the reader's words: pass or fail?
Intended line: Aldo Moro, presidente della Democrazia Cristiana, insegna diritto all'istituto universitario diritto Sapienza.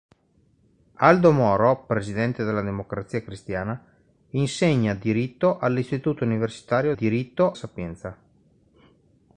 pass